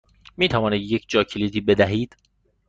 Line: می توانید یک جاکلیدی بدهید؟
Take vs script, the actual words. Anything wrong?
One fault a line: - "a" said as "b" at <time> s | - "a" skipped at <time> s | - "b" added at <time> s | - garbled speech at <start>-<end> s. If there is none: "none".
none